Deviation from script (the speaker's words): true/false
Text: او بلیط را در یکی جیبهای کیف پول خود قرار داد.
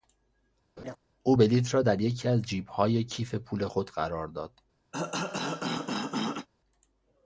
true